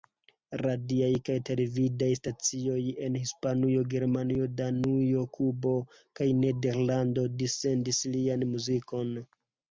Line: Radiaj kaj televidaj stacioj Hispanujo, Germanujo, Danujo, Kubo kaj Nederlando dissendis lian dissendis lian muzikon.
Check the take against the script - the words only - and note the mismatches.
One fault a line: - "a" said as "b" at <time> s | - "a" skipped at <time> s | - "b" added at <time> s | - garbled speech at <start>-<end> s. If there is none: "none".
- "en" added at 3.1 s
- "dissendis lian" skipped at 8.5 s